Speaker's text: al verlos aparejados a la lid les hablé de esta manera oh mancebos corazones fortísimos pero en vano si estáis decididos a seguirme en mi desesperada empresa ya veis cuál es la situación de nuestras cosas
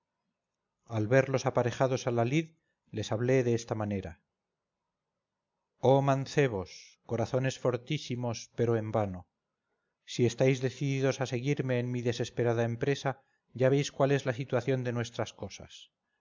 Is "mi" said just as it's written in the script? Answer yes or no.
yes